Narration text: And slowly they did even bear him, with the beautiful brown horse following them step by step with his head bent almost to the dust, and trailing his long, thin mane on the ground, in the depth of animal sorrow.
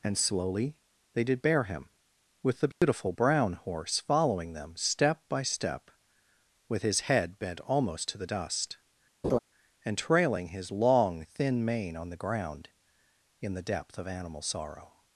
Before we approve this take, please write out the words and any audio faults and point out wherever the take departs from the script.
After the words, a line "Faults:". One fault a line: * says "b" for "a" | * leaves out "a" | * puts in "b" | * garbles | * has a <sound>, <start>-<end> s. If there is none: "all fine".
And slowly they did bear him, with the beautiful brown horse following them step by step with his head bent almost to the dust, and trailing his long, thin mane on the ground, in the depth of animal sorrow.
Faults:
* leaves out "even"
* has a dropout, 2.7-2.8 s
* has a laugh, 9.2-9.4 s